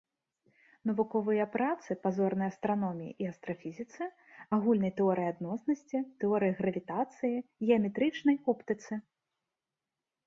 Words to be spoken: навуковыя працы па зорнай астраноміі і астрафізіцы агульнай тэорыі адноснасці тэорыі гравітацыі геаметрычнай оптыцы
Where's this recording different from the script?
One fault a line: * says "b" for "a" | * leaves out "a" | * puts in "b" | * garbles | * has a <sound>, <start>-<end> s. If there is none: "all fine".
all fine